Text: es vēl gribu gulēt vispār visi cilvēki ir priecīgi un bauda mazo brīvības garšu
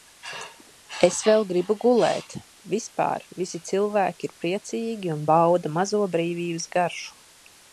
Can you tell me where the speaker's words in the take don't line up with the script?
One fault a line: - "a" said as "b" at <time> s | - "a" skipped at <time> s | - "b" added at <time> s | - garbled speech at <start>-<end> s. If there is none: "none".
none